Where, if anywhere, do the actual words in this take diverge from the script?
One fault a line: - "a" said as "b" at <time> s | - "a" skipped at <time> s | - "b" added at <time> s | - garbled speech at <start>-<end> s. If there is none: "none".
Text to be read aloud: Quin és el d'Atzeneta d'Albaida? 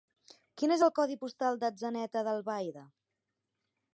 - "codi postal" added at 1.0 s